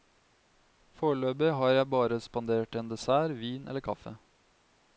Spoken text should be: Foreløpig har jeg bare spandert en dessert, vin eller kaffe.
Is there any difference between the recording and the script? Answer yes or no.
no